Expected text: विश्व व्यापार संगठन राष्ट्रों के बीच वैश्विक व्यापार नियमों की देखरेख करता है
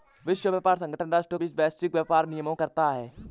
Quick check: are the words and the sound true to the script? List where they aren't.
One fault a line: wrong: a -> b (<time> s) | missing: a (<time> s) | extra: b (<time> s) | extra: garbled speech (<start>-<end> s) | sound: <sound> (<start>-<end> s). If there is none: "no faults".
missing: के (1.4 s)
missing: की देखरेख (2.5 s)